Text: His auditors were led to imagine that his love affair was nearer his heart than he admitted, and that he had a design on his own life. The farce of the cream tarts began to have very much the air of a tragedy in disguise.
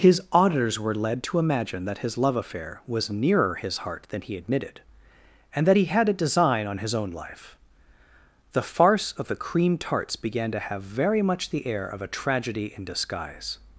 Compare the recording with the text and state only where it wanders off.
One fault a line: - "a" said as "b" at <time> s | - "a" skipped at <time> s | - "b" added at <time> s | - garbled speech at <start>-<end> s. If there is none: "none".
none